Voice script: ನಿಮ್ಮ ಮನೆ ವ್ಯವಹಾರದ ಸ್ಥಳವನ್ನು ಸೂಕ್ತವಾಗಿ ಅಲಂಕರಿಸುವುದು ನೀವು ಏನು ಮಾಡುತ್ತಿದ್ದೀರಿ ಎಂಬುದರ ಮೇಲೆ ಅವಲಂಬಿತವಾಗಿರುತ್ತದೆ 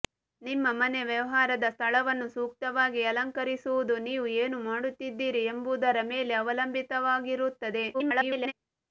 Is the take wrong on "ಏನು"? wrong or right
right